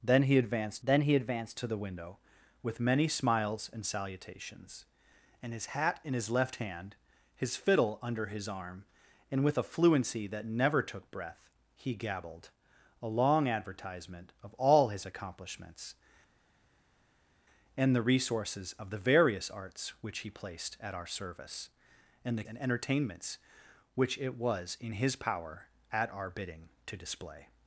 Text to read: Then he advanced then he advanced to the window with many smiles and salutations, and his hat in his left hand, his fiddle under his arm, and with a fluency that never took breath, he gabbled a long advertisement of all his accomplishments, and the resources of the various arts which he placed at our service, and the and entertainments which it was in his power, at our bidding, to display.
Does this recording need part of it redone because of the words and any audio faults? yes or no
no